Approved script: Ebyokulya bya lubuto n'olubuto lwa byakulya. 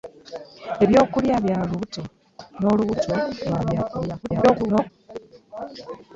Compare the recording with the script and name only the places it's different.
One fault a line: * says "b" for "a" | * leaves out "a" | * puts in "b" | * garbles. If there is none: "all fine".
* garbles